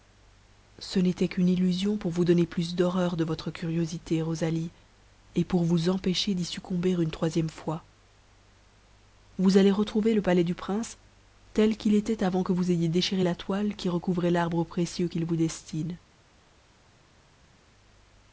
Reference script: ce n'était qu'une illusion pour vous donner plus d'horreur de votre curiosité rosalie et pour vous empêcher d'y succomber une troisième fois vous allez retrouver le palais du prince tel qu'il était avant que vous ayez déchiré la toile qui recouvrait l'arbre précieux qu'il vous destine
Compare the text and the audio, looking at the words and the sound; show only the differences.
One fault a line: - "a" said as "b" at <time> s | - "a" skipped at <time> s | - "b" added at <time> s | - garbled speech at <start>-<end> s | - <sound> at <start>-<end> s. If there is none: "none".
none